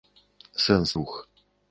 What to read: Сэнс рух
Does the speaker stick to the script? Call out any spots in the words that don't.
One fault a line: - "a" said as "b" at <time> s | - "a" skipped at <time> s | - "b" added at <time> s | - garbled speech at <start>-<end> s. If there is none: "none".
none